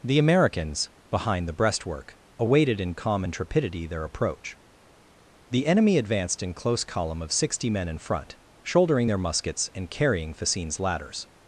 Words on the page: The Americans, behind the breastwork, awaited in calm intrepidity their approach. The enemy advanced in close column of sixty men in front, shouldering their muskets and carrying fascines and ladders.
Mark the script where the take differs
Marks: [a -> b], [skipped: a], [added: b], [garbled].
The Americans, behind the breastwork, awaited in calm intrepidity their approach. The enemy advanced in close column of sixty men in front, shouldering their muskets and carrying fascines [skipped: and] ladders.